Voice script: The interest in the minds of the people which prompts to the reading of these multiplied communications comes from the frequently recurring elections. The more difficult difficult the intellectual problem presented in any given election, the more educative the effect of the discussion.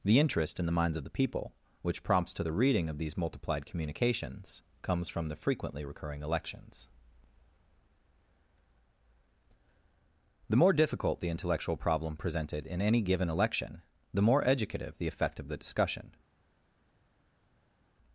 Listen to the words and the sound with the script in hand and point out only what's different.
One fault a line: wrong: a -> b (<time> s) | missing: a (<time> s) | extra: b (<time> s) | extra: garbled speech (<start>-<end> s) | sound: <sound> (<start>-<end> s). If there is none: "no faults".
missing: difficult (11.2 s)